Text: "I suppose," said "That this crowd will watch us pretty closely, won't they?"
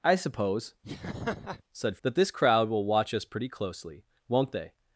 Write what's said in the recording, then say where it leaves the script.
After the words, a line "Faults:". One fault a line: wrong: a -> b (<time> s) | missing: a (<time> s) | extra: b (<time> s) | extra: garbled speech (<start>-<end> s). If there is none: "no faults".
"I suppose," said "That this crowd will watch us pretty closely, won't they?"
Faults:
no faults